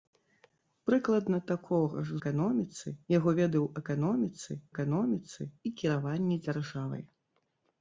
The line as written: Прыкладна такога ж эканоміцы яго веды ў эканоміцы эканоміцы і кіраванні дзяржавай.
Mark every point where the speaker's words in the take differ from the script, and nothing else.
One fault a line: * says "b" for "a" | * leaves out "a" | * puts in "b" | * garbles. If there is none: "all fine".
all fine